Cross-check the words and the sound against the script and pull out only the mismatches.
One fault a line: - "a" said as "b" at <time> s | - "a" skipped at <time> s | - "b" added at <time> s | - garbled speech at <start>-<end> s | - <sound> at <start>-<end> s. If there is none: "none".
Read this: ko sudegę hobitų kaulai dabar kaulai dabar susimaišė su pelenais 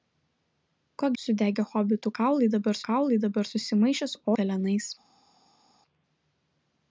none